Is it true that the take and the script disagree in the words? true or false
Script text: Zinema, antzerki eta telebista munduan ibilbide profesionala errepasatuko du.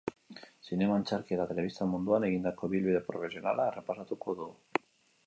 true